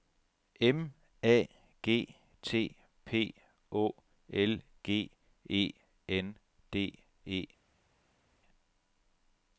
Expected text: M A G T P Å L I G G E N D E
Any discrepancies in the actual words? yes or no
yes